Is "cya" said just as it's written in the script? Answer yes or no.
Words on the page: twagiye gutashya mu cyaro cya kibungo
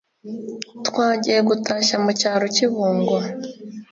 no